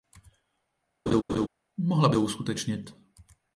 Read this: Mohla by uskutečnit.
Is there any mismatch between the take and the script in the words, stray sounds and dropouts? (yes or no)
yes